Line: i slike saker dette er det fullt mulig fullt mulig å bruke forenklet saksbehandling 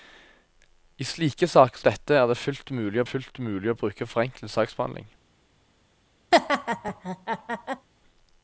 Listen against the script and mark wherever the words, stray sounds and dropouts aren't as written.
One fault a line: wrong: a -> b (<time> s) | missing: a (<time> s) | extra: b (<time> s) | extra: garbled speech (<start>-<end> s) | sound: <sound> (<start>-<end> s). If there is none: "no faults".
sound: laugh (6.3-7.9 s)